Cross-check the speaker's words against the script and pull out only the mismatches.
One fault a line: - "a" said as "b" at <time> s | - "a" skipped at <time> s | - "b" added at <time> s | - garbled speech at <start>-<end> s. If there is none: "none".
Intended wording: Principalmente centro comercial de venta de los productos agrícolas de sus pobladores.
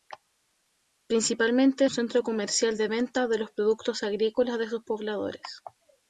none